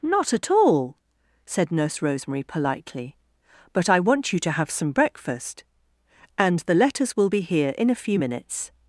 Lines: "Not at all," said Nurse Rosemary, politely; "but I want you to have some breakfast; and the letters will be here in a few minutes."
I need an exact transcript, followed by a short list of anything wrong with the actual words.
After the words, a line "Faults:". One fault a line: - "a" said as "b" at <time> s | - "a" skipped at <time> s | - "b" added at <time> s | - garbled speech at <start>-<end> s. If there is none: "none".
"Not at all," said Nurse Rosemary, politely; "but I want you to have some breakfast; and the letters will be here in a few minutes."
Faults:
none